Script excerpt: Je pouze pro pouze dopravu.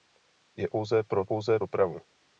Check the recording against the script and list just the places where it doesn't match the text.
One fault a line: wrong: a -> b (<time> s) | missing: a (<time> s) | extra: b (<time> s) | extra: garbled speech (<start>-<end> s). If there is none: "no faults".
no faults